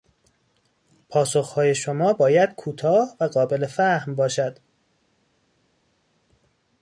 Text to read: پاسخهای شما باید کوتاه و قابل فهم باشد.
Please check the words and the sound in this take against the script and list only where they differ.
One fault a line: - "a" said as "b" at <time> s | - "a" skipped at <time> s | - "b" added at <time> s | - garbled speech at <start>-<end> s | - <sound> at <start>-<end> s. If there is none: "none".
none